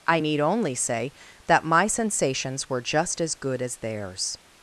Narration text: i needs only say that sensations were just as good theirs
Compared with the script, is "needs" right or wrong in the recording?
wrong